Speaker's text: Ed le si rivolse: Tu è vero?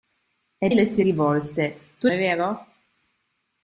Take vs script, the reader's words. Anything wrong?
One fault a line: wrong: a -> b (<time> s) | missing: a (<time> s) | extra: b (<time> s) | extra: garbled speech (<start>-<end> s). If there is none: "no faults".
no faults